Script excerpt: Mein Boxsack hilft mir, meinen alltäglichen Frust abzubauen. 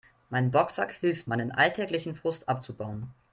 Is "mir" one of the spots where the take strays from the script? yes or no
yes